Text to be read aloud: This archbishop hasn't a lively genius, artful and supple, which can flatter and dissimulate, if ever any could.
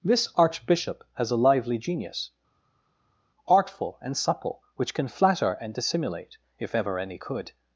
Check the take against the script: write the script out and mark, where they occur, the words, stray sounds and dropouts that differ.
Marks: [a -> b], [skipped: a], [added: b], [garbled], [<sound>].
This archbishop [hasn't -> has] a lively genius, artful and supple, which can flatter and dissimulate, if ever any could.